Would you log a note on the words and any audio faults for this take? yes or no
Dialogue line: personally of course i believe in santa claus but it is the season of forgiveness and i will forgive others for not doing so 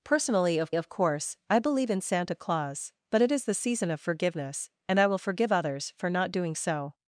yes